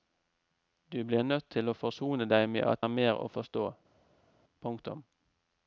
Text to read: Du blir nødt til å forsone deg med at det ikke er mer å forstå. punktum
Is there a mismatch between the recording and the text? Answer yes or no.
yes